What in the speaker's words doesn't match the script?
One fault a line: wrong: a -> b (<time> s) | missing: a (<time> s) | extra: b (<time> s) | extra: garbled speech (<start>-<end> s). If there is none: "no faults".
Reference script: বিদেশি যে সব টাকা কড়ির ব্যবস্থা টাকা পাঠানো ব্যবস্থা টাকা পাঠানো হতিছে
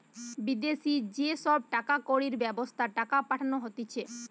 missing: ব্যবস্থা টাকা পাঠানো (3.6 s)